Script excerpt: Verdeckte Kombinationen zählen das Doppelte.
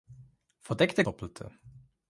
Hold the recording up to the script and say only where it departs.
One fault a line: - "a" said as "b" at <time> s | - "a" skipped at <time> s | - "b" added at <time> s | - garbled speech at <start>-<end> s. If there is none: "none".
- "Kombinationen zählen das" skipped at 1.1 s